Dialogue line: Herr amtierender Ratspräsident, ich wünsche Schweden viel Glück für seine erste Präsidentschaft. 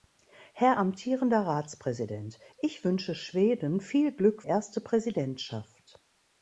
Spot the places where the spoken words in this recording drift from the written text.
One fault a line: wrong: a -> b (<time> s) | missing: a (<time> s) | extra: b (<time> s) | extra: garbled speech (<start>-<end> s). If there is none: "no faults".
missing: für seine (4.4 s)